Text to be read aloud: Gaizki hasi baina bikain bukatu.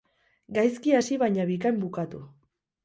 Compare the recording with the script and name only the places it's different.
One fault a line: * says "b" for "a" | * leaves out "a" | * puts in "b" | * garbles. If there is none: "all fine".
all fine